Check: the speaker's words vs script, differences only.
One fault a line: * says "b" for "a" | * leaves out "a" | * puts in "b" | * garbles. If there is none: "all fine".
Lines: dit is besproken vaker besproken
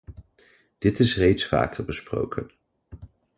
* says "reeds" for "besproken"